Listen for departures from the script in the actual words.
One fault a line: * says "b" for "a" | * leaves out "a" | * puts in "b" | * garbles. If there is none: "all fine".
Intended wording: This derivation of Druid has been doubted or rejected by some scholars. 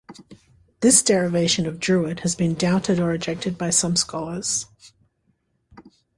all fine